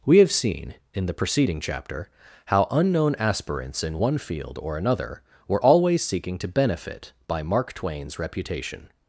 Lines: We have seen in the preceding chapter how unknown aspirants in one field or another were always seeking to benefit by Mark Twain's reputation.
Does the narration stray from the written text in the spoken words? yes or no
no